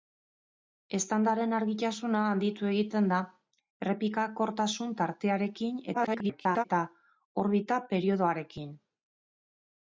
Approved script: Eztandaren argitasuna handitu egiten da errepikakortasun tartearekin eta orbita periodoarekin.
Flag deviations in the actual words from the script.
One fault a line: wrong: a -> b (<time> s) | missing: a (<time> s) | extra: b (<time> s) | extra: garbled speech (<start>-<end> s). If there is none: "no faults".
extra: garbled speech (5.9-6.6 s)